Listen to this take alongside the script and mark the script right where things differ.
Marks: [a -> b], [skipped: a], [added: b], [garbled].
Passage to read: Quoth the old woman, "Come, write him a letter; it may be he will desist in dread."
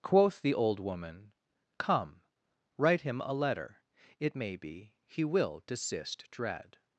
Quoth the old woman, "Come, write him a letter; it may be he will desist [skipped: in] dread."